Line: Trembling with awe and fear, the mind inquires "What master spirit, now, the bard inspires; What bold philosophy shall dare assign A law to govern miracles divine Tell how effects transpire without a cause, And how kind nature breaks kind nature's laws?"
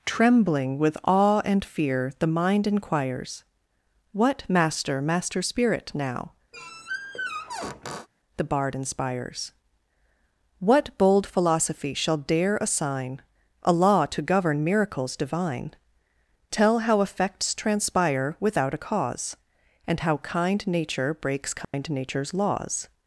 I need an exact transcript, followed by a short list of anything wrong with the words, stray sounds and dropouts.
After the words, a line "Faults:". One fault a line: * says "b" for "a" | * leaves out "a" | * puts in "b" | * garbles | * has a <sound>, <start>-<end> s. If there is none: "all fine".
Trembling with awe and fear, the mind inquires "What master master spirit, now, the bard inspires; What bold philosophy shall dare assign A law to govern miracles divine Tell how effects transpire without a cause, And how kind nature breaks kind nature's laws?"
Faults:
* puts in "master"
* has a squeak, 6.5-8.1 s
* has a dropout, 21.6-21.7 s